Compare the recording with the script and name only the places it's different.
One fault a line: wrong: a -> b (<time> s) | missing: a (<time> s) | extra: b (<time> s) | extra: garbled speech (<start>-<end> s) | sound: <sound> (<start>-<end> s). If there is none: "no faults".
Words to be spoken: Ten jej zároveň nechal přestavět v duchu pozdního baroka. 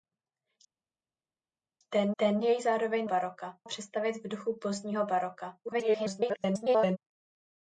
extra: ten (2.2 s)
wrong: nechal -> baroka (3.1 s)
extra: garbled speech (5.7-7.0 s)